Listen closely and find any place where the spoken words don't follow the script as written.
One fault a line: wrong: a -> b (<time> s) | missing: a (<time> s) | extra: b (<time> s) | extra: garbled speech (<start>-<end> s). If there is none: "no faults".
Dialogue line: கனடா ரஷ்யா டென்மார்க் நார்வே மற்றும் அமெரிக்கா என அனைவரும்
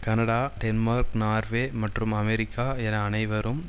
missing: ரஷ்யா (0.4 s)